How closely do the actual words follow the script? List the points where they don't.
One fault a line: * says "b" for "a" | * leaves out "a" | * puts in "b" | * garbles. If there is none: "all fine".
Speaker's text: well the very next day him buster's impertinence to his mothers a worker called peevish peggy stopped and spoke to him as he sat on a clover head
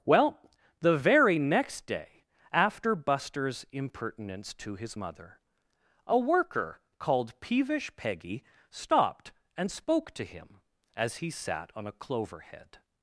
* says "after" for "him"
* says "mother" for "mothers"